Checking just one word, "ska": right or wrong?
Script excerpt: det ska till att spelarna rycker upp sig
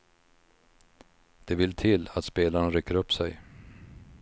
wrong